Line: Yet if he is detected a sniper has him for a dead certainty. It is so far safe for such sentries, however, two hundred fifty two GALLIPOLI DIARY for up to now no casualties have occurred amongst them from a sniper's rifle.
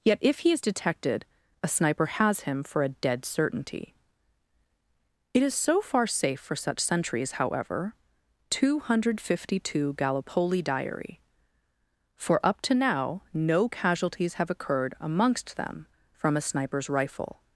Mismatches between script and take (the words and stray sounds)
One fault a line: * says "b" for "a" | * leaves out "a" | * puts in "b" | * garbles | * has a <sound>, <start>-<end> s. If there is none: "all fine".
all fine